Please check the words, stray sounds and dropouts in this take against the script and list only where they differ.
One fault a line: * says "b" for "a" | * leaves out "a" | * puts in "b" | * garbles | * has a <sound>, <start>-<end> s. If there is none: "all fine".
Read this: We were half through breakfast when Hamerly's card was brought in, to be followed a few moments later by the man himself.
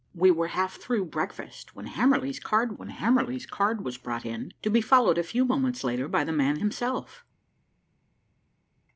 * puts in "when Hamerly's card"